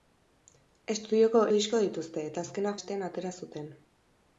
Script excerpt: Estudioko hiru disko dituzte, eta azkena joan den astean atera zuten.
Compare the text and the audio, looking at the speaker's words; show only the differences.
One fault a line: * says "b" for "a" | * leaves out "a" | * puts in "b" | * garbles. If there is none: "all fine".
* leaves out "hiru"
* leaves out "joan den"